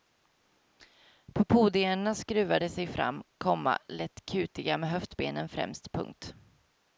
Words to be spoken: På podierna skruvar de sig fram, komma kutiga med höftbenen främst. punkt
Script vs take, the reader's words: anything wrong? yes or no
yes